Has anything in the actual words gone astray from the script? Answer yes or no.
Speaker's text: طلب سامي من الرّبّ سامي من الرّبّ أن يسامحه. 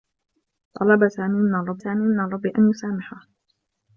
no